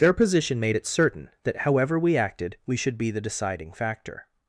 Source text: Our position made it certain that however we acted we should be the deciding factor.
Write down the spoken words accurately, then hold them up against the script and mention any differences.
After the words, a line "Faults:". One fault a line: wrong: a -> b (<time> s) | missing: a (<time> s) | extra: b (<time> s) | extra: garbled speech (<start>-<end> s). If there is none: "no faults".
Their position made it certain that however we acted we should be the deciding factor.
Faults:
wrong: Our -> Their (0.0 s)